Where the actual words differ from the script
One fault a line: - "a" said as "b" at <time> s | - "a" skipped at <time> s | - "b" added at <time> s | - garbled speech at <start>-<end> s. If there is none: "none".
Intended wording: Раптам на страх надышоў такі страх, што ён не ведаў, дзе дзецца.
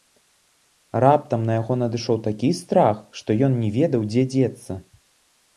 - "страх" said as "яго" at 1.6 s